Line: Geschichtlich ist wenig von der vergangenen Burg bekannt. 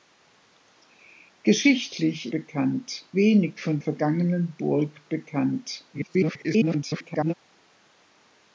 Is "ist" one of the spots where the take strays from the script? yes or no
yes